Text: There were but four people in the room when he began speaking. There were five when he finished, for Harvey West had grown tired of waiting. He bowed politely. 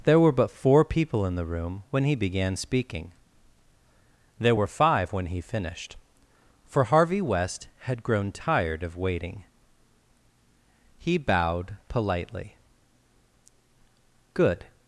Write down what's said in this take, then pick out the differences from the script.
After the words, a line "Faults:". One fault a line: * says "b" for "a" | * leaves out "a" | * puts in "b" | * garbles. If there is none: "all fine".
There were but four people in the room when he began speaking. There were five when he finished, for Harvey West had grown tired of waiting. He bowed politely. "Good
Faults:
* puts in "Good"